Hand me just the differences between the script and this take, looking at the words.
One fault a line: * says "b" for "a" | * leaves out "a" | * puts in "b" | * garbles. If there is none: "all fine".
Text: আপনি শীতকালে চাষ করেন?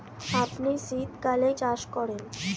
all fine